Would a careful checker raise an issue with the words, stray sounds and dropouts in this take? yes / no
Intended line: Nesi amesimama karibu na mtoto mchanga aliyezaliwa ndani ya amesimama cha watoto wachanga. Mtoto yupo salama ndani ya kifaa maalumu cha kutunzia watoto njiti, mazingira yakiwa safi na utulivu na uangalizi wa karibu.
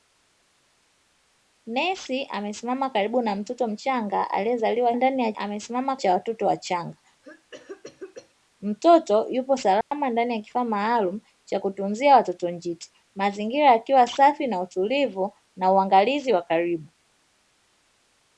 yes